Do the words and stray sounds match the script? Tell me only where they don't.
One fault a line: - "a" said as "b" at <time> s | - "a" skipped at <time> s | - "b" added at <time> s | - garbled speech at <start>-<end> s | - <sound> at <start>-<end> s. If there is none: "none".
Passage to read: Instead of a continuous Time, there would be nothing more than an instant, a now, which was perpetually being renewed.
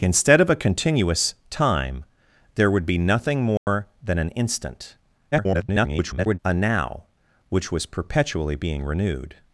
- dropout at 3.6-3.7 s
- garbled speech at 5.3-6.4 s